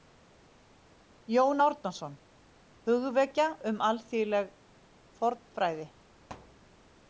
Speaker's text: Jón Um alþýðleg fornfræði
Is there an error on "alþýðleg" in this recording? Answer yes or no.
no